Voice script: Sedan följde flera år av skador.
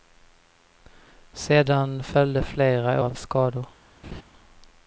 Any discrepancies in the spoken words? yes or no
yes